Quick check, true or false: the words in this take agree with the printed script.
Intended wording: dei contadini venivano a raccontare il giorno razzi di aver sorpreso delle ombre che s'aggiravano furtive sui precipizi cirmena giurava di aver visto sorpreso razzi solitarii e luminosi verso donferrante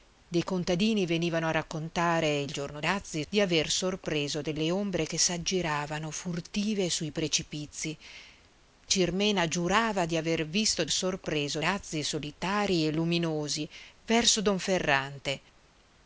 true